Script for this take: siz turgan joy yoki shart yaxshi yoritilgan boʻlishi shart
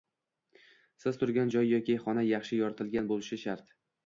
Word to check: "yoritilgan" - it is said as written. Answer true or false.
true